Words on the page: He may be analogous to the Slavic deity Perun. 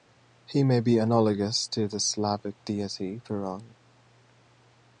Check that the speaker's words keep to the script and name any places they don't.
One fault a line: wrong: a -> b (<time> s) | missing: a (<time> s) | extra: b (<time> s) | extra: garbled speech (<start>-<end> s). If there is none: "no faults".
no faults